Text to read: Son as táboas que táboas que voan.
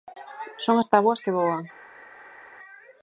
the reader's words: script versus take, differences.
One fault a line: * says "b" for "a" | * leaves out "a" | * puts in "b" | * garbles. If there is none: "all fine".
* leaves out "táboas que"